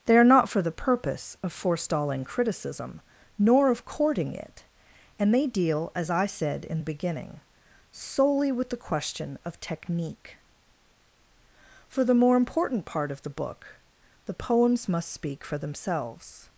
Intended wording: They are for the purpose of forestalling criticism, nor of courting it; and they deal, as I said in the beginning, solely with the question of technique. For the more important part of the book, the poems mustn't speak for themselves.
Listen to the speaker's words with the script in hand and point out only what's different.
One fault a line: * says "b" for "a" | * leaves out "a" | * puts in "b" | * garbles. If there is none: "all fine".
* puts in "not"
* says "must" for "mustn't"